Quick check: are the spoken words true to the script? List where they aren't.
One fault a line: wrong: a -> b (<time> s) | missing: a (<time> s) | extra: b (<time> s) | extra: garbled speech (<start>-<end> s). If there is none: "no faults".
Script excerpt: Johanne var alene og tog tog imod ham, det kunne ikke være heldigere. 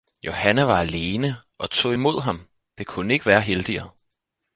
missing: tog (1.9 s)